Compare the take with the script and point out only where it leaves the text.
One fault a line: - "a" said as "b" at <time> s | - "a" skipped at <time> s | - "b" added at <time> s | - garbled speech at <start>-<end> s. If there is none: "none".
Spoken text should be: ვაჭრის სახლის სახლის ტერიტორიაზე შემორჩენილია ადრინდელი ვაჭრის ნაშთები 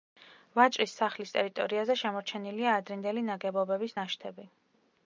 - "სახლის" skipped at 1.3 s
- "ვაჭრის" said as "ნაგებობების" at 3.3 s